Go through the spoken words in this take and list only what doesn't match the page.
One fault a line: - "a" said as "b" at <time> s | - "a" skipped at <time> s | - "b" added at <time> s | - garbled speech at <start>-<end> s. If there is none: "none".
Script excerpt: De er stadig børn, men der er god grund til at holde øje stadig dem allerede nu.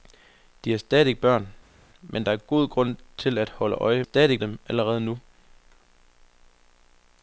none